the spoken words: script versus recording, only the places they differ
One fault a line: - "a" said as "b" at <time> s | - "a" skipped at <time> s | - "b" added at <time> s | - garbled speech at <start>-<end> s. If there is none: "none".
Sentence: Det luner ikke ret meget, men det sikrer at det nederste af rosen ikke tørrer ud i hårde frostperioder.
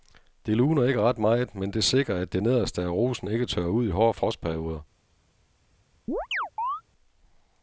none